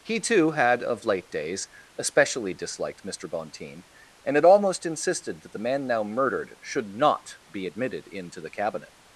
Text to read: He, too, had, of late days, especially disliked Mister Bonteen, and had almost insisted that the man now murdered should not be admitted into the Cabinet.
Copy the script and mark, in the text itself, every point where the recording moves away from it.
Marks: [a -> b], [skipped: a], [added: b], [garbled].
He, too, had, of late days, especially disliked Mister Bonteen, and had almost insisted that the man now murdered should not be admitted into the Cabinet.